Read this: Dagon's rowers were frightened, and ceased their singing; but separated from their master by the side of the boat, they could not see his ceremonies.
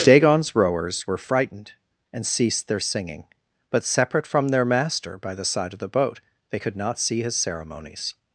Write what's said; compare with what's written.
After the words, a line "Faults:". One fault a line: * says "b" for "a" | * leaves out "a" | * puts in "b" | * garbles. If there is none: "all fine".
Dagon's rowers were frightened, and ceased their singing; but separate from their master by the side of the boat, they could not see his ceremonies.
Faults:
* says "separate" for "separated"